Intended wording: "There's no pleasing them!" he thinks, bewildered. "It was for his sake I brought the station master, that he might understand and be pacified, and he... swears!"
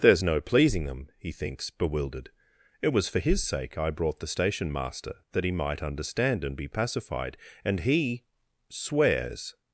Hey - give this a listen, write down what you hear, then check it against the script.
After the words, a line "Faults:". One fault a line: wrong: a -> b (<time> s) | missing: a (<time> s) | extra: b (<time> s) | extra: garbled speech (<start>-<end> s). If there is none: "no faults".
"There's no pleasing them!" he thinks, bewildered. "It was for his sake I brought the station master, that he might understand and be pacified, and he... swears!"
Faults:
no faults